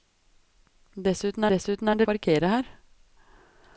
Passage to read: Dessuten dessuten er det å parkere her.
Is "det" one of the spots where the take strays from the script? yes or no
no